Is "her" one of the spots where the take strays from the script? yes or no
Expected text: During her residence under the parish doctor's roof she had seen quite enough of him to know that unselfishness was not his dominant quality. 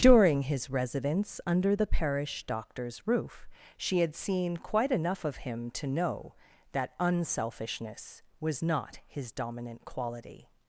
yes